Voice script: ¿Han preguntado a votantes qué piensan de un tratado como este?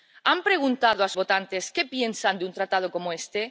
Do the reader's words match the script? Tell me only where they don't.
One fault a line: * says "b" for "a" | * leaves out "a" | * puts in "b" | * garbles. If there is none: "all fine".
all fine